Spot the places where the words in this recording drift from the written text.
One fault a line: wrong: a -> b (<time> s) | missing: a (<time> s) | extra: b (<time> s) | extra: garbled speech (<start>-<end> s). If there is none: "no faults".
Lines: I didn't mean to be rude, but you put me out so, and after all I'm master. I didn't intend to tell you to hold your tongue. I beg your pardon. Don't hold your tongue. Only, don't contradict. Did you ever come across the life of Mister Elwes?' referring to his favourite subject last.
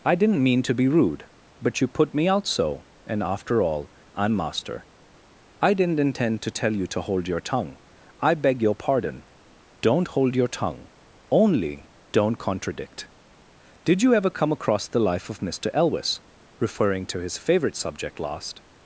no faults